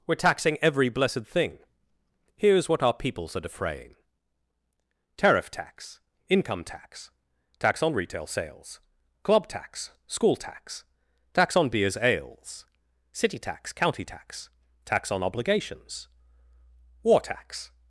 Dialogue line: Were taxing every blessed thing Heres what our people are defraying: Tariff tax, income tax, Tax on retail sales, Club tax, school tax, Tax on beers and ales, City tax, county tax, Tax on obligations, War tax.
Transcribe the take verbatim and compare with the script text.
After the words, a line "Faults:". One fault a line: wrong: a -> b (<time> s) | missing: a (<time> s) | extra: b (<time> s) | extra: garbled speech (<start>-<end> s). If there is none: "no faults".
Were taxing every blessed thing Heres what our peoples are defraying: Tariff tax, income tax, Tax on retail sales, Club tax, school tax, Tax on beers ales, City tax, county tax, Tax on obligations, War tax.
Faults:
wrong: people -> peoples (2.9 s)
missing: and (12.0 s)